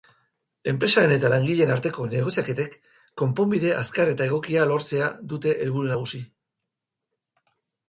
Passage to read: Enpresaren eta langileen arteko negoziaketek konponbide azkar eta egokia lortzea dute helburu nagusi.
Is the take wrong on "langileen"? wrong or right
right